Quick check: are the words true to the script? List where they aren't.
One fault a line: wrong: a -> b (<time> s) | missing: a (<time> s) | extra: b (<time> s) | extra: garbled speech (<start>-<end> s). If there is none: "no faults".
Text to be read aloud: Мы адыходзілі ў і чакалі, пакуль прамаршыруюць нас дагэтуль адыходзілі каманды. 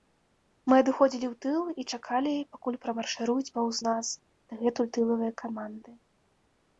extra: тыл (1.4 s)
extra: паўз (3.6 s)
wrong: адыходзілі -> тылавыя (5.0 s)